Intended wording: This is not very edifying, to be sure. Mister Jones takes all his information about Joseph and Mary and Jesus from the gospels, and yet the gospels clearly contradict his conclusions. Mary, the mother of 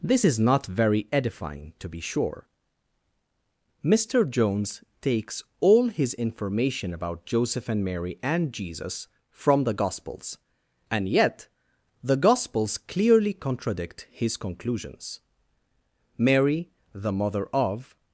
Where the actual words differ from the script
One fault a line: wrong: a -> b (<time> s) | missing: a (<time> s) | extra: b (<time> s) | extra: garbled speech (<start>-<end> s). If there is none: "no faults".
no faults